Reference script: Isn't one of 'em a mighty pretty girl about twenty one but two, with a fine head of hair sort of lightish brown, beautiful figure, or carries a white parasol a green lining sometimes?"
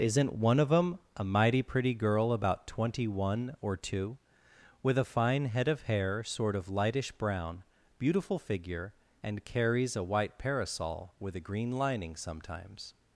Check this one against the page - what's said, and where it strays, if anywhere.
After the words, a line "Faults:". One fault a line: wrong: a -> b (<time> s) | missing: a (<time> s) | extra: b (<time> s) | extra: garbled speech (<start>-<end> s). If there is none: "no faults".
Isn't one of 'em a mighty pretty girl about twenty one or two, with a fine head of hair sort of lightish brown, beautiful figure, and carries a white parasol with a green lining sometimes?"
Faults:
wrong: but -> or (3.6 s)
wrong: or -> and (9.2 s)
extra: with (11.2 s)